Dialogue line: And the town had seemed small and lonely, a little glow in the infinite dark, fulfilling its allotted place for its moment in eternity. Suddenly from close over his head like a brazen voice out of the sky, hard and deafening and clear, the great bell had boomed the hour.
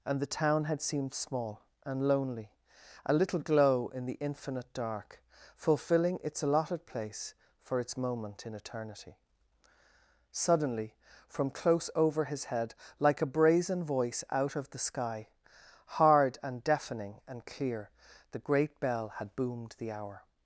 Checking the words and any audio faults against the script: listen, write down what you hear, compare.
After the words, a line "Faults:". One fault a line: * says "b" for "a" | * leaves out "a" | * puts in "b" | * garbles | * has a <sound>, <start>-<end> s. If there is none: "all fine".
And the town had seemed small and lonely, a little glow in the infinite dark, fulfilling its allotted place for its moment in eternity. Suddenly from close over his head like a brazen voice out of the sky, hard and deafening and clear, the great bell had boomed the hour.
Faults:
all fine